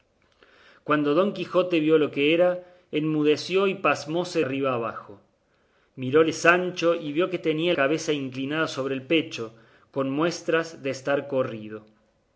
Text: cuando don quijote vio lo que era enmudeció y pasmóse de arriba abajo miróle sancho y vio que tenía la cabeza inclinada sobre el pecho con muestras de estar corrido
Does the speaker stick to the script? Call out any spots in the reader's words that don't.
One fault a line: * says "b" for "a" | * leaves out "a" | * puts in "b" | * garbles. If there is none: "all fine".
* leaves out "de"
* leaves out "la"